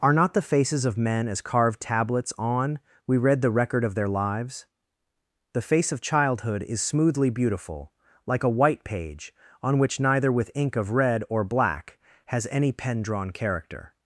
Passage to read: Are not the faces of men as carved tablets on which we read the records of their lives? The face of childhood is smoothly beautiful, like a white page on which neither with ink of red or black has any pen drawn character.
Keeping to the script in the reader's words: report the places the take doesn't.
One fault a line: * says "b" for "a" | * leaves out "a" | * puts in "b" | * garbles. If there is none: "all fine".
* leaves out "which"
* says "record" for "records"